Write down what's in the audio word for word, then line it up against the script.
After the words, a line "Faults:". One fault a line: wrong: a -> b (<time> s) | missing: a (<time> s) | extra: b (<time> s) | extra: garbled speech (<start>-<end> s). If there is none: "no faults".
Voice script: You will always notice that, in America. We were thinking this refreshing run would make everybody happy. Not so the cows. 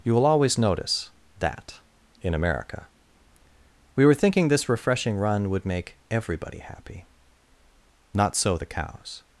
You will always notice that, in America. We were thinking this refreshing run would make everybody happy. Not so the cows.
Faults:
no faults